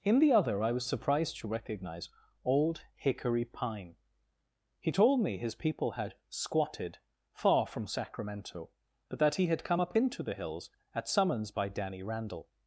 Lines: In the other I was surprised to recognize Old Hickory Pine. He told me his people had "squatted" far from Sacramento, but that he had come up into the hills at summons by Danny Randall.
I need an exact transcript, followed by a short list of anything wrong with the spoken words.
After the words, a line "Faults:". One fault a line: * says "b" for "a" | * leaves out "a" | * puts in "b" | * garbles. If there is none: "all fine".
In the other I was surprised to recognize Old Hickory Pine. He told me his people had "squatted" far from Sacramento, but that he had come up into the hills at summons by Danny Randall.
Faults:
all fine